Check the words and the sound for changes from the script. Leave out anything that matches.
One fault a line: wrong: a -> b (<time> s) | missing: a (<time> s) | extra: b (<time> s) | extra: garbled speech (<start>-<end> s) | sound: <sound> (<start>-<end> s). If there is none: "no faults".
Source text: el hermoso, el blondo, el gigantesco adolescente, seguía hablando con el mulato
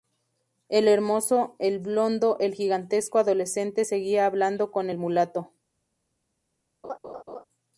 sound: laugh (6.8-7.4 s)